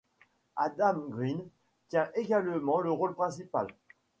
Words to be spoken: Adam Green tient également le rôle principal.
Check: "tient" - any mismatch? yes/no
no